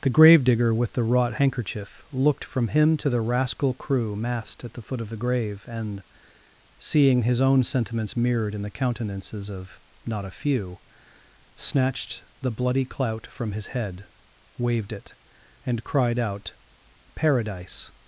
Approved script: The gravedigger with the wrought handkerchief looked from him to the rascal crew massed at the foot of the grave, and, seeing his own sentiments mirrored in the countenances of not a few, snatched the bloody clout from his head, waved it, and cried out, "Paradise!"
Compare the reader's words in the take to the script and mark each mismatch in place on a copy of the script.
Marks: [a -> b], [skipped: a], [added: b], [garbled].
The gravedigger with the wrought handkerchief looked from him to the rascal crew massed at the foot of the grave, and, seeing his own sentiments mirrored in the countenances of not a few, snatched the bloody clout from his head, waved it, and cried out, "Paradise!"